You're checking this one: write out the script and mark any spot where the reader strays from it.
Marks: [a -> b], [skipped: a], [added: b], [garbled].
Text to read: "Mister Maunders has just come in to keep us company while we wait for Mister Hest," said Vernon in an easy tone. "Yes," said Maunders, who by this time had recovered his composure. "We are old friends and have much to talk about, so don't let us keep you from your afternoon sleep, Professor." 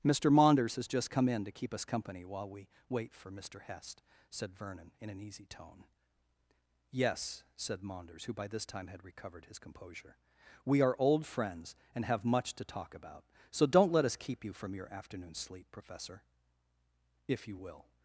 "Mister Maunders has just come in to keep us company while we wait for Mister Hest," said Vernon in an easy tone. "Yes," said Maunders, who by this time had recovered his composure. "We are old friends and have much to talk about, so don't let us keep you from your afternoon sleep, Professor." [added: If you will]